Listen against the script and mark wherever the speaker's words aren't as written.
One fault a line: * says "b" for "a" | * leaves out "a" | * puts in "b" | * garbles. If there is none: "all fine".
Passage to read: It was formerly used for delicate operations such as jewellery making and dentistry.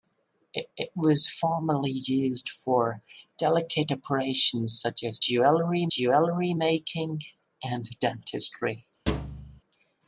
* puts in "it"
* puts in "jewellery"